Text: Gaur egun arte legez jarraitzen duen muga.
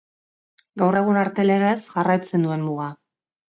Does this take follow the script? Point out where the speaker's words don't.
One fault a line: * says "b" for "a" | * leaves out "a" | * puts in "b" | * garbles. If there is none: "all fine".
all fine